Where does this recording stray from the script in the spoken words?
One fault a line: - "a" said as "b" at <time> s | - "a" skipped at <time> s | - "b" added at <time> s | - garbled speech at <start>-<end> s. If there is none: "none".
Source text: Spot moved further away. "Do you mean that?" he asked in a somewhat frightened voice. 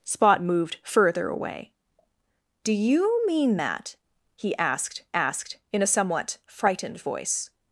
- "asked" added at 5.1 s